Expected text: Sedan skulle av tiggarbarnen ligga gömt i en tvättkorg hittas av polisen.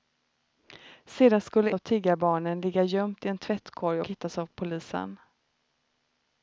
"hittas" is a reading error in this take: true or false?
false